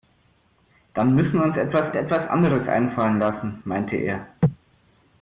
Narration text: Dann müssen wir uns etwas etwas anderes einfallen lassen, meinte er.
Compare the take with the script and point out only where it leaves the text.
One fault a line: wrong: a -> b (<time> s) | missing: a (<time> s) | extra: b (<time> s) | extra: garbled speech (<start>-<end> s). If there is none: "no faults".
no faults